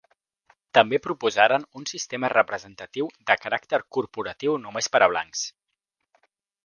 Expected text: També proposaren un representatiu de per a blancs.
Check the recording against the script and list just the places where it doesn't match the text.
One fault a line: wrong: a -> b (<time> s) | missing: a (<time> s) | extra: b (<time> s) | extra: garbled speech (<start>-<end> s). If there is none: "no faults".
extra: sistema (1.9 s)
extra: caràcter corporatiu només (3.5 s)